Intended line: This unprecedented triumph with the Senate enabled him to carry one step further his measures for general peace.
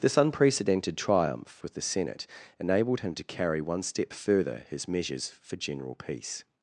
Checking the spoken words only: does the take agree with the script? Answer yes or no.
yes